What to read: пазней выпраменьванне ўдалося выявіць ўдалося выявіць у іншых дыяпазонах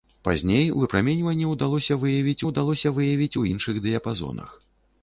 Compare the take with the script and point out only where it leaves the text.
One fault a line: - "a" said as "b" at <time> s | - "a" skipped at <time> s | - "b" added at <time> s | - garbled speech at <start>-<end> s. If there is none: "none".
none